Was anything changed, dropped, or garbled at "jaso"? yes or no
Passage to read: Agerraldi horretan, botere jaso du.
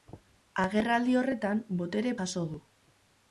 no